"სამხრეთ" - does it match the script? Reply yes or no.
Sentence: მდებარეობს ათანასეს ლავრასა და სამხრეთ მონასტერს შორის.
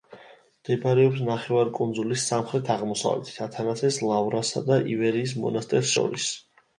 no